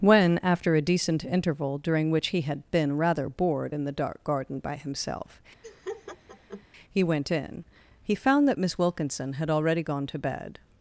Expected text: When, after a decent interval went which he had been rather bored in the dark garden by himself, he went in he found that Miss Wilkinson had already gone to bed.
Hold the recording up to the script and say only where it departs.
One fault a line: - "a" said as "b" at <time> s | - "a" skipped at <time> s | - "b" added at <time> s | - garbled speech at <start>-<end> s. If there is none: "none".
- "went" said as "during" at 1.8 s